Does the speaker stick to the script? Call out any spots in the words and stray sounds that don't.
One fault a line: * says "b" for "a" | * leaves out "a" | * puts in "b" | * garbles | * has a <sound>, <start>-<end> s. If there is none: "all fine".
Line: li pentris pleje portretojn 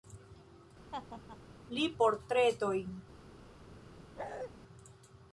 * has a laugh, 0.9-1.4 s
* leaves out "pentris pleje"
* has a bark, 4.2-4.5 s